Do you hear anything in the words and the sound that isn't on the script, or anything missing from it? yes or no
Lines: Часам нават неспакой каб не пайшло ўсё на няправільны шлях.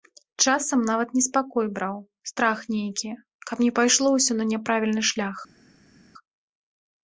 yes